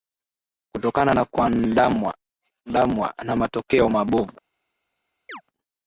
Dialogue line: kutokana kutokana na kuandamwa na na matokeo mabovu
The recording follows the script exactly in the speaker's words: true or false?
false